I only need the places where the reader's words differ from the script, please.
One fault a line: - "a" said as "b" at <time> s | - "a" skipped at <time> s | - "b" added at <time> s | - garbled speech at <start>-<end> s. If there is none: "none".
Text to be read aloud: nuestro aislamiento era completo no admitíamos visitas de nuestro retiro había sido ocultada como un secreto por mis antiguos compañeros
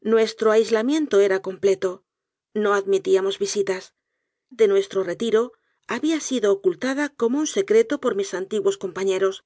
none